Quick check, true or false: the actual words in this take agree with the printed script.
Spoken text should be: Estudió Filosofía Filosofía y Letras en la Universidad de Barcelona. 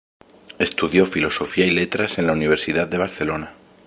false